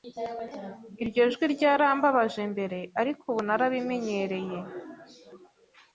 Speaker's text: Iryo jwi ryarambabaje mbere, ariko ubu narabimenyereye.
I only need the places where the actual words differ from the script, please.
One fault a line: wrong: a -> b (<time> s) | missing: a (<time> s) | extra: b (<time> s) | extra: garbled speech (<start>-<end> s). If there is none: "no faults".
no faults